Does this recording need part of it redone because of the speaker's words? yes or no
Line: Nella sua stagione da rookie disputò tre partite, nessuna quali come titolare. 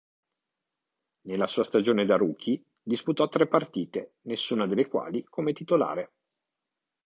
yes